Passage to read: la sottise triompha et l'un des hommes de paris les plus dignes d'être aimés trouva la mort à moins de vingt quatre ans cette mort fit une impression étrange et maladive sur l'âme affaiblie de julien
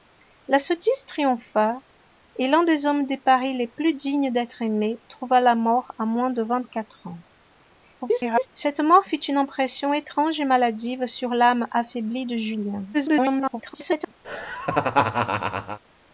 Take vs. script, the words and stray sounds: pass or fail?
fail